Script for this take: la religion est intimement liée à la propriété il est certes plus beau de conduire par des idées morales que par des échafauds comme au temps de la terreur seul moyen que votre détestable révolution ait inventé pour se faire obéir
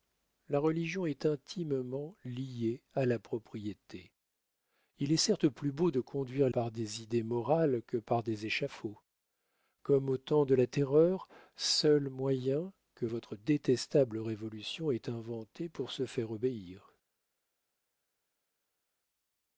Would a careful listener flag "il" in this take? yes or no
no